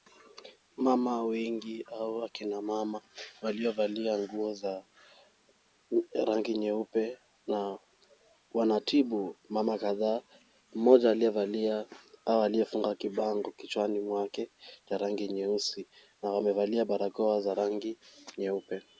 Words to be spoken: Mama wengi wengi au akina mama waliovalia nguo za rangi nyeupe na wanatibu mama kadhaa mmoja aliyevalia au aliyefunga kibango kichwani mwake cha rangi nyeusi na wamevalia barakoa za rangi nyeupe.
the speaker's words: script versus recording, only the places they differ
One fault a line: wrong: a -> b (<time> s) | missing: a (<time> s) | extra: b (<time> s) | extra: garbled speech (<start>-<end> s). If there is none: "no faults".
missing: wengi (1.8 s)